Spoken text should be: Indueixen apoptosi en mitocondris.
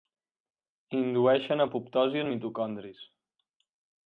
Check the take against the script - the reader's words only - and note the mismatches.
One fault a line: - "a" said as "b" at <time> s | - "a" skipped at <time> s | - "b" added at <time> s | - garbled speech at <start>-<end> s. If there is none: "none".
none